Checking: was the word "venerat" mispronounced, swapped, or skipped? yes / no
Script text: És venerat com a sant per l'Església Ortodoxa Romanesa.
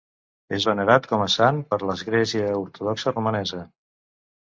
no